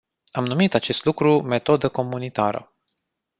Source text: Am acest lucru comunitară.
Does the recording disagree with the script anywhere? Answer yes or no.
yes